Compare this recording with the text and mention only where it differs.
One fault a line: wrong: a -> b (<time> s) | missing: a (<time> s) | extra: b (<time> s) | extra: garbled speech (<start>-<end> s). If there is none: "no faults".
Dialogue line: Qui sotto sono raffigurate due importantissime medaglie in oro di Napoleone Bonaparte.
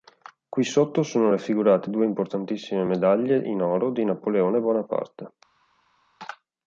no faults